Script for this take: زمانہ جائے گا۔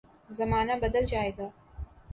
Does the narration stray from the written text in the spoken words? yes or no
yes